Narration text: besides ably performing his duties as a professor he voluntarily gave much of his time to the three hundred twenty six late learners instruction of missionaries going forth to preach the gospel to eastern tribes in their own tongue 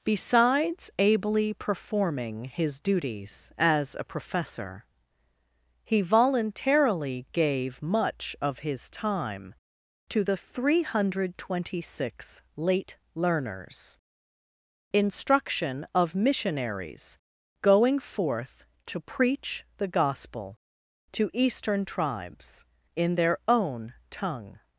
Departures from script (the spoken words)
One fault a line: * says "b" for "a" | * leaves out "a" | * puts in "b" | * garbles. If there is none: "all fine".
all fine